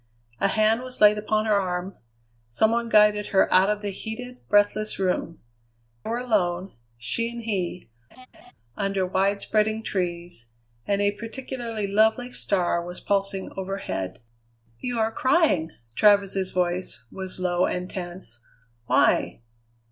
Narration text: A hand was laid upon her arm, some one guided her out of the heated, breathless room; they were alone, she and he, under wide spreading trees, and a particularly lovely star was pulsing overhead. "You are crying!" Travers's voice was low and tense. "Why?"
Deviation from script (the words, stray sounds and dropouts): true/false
true